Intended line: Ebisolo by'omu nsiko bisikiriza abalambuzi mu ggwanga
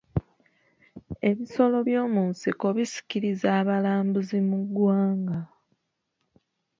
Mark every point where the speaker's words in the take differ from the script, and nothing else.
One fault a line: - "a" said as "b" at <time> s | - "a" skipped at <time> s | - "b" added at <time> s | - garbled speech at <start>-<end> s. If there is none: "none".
none